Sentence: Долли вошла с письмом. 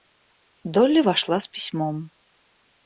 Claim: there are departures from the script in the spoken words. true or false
false